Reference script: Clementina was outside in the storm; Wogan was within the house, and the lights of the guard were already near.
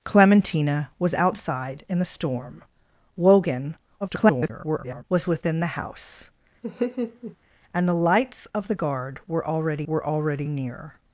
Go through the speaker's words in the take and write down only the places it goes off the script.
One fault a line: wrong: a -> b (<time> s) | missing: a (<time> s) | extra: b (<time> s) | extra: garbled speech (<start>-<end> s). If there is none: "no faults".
extra: garbled speech (4.0-5.0 s)
extra: were already (9.9 s)